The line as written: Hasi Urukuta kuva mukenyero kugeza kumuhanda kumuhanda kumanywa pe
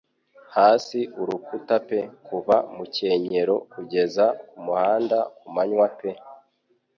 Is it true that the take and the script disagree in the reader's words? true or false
true